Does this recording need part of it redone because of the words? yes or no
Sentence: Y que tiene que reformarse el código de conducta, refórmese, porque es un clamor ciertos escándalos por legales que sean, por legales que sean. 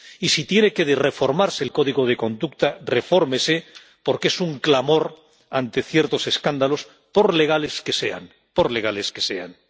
yes